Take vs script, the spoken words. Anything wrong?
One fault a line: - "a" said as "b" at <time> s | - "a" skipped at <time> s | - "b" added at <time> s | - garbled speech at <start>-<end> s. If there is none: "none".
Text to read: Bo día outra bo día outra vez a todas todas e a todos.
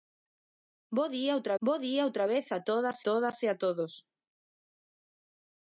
none